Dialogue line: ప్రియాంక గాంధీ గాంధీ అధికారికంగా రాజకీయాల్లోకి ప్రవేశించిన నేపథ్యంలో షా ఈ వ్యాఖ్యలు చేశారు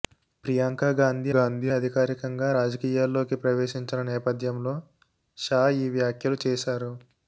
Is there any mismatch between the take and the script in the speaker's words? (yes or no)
no